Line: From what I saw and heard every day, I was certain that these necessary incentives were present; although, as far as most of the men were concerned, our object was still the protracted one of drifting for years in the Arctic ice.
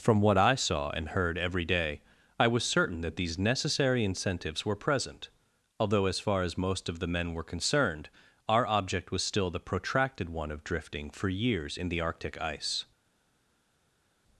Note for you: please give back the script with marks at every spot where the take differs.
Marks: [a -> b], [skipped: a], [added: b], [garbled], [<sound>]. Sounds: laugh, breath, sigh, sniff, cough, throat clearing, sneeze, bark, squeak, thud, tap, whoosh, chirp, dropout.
From what I saw and heard every day, I was certain that these necessary incentives were present; although, as far as most of the men were concerned, our object was still the protracted one of drifting for years in the Arctic ice.